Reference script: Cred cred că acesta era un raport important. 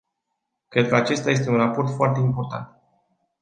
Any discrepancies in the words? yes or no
yes